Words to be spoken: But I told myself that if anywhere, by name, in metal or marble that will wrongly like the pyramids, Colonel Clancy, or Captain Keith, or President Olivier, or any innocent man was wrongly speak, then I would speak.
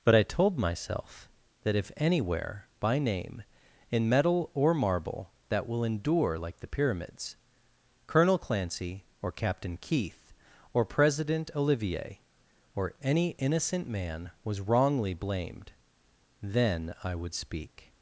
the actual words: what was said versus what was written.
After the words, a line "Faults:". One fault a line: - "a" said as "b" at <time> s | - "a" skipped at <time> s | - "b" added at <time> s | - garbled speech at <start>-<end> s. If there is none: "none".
But I told myself that if anywhere, by name, in metal or marble that will endure like the pyramids, Colonel Clancy, or Captain Keith, or President Olivier, or any innocent man was wrongly blamed, then I would speak.
Faults:
- "wrongly" said as "endure" at 5.8 s
- "speak" said as "blamed" at 15.1 s